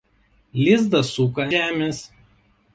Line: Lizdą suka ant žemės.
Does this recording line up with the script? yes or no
no